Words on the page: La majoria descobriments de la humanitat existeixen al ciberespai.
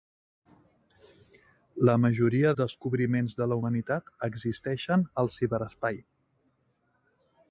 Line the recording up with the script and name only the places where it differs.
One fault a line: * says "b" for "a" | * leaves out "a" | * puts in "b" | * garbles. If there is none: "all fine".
all fine